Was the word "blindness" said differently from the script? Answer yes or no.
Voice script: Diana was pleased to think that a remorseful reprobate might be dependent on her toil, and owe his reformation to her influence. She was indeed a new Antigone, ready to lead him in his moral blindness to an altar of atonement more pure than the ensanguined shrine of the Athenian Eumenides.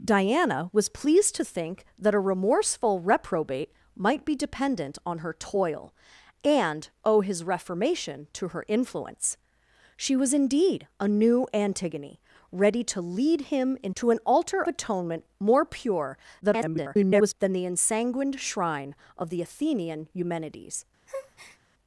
yes